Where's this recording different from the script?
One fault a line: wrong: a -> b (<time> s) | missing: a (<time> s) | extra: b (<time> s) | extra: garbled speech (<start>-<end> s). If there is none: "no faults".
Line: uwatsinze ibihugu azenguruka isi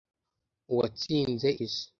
missing: ibihugu azenguruka (1.5 s)